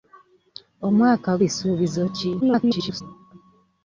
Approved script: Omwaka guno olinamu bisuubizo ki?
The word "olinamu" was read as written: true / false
false